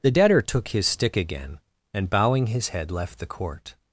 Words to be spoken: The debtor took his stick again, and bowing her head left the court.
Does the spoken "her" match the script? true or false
false